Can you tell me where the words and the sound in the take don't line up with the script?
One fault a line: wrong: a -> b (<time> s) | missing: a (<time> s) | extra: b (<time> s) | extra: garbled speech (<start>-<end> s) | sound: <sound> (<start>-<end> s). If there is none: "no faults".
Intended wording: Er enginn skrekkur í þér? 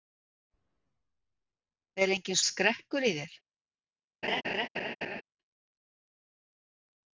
sound: laugh (4.2-5.2 s)